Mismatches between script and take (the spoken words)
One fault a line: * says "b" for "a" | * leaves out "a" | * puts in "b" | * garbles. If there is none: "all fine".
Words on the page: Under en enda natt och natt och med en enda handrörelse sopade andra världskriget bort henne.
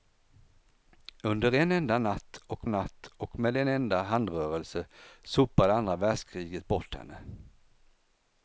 all fine